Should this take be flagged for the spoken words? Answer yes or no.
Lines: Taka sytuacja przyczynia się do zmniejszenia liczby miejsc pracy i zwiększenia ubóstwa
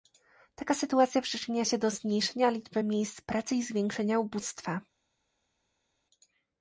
no